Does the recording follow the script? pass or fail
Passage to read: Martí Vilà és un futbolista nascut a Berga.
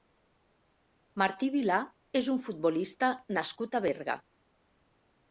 pass